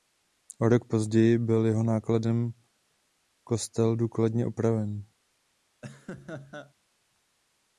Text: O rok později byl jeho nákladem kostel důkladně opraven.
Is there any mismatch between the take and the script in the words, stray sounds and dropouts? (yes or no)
yes